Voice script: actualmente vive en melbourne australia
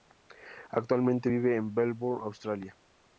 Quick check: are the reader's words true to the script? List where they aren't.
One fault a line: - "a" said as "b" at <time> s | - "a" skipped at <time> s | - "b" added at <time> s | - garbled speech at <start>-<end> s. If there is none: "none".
none